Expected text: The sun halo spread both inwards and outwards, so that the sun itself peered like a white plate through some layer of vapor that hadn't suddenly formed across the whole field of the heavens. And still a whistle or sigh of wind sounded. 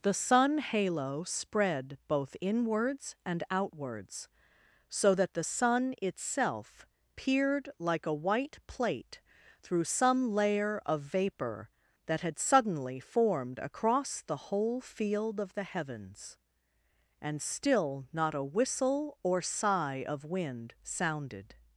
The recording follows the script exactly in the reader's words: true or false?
false